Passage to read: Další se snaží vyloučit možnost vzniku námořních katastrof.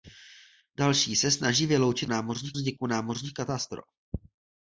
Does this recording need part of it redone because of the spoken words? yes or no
yes